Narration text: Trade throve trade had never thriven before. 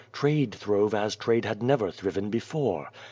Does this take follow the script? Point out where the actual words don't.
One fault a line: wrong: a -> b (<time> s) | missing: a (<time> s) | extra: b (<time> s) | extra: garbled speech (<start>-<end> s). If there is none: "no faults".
extra: as (0.9 s)